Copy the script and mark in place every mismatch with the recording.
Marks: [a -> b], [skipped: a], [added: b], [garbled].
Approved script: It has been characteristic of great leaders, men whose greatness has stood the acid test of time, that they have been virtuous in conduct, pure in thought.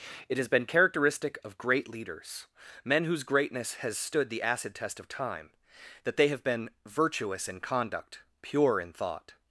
It has been characteristic of great leaders, men whose greatness has stood the acid test of time, that they have been virtuous in conduct, pure in thought.